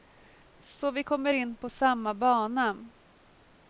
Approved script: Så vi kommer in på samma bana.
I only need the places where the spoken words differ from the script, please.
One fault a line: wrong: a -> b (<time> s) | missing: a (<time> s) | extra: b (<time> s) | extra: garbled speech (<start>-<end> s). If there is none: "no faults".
no faults